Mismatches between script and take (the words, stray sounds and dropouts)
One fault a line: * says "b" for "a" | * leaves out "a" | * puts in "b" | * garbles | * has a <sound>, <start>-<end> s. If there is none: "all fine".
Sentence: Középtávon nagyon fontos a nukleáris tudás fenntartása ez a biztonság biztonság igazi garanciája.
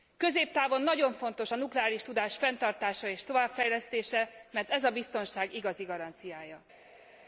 * puts in "és továbbfejlesztése mert"
* leaves out "biztonság"